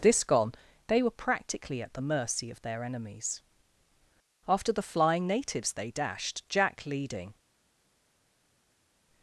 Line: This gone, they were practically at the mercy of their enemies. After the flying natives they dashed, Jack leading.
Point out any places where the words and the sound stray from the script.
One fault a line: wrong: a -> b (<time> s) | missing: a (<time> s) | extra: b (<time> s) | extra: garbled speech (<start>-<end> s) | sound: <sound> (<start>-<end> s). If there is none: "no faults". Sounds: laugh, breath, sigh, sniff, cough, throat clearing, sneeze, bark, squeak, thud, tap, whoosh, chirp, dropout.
no faults